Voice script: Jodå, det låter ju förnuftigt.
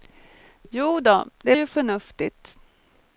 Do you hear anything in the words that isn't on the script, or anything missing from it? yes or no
yes